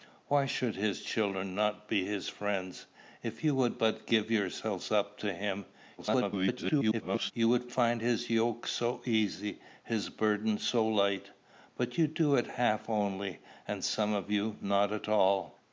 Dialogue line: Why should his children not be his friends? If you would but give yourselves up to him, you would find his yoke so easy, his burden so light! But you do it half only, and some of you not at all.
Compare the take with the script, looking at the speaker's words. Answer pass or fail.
fail